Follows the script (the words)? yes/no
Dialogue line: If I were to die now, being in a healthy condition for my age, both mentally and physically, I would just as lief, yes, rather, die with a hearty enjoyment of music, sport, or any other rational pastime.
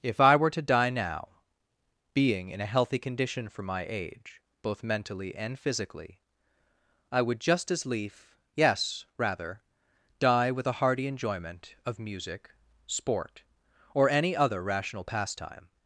yes